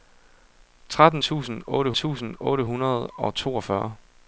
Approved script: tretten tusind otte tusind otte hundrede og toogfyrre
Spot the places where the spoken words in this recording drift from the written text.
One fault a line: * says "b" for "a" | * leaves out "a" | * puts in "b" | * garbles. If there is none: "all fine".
all fine